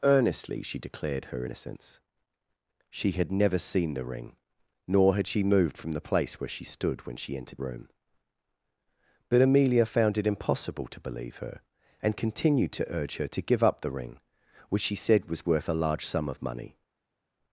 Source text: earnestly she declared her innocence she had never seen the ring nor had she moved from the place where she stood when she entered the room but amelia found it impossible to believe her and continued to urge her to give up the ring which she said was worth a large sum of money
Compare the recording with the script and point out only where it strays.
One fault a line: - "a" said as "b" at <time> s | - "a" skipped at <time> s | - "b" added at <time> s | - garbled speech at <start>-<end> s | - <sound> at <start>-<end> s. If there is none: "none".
- "the" skipped at 7.6 s